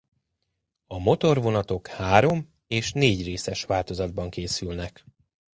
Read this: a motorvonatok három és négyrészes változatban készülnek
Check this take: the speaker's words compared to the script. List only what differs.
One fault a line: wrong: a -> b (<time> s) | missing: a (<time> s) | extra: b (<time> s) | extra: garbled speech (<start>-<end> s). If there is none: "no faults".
no faults